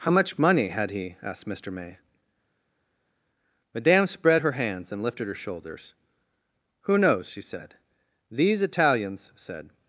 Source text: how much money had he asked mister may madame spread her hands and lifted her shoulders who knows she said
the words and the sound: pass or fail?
fail